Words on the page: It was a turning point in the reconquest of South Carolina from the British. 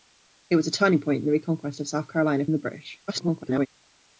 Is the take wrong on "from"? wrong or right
wrong